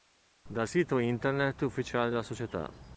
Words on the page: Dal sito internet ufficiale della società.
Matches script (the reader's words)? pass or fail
pass